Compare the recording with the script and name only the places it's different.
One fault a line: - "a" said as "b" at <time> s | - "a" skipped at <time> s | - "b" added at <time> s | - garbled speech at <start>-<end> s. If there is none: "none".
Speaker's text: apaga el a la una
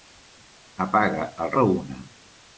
none